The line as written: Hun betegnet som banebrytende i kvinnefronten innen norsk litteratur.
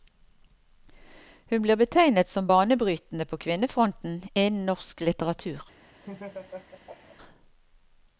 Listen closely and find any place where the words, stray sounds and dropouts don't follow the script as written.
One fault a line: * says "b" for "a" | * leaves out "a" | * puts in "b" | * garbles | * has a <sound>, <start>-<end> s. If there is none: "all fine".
* puts in "blir"
* says "på" for "i"
* has a laugh, 6.0-7.2 s